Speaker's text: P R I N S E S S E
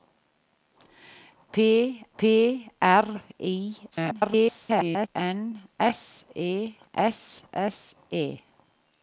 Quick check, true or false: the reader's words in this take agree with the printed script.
false